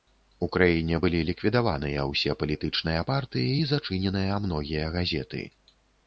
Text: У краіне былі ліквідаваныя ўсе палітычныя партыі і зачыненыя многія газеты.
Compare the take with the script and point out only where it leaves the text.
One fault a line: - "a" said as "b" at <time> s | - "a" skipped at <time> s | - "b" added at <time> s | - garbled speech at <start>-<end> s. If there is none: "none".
none